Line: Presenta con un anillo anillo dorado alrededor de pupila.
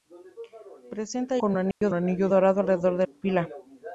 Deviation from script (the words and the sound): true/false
true